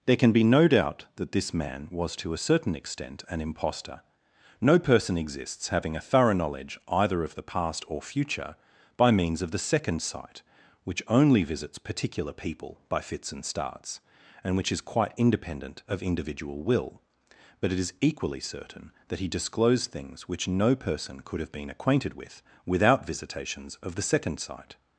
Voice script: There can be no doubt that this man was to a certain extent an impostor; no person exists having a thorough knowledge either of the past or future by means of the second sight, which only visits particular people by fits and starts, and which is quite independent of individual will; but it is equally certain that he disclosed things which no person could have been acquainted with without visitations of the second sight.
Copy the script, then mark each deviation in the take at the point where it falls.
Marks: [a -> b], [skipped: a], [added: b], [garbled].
There can be no doubt that this man was to a certain extent an impostor; no person exists having a thorough knowledge either of the past or future by means of the second sight, which only visits particular people by fits and starts, and which is quite independent of individual will; but it is equally certain that he disclosed things which no person could have been acquainted with without visitations of the second sight.